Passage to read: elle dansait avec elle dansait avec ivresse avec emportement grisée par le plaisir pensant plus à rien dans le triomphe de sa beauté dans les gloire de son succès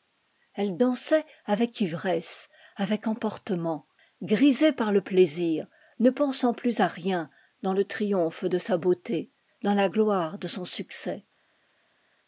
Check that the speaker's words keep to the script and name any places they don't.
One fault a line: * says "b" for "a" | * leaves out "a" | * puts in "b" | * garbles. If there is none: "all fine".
* leaves out "elle dansait avec"
* puts in "ne"
* says "la" for "les"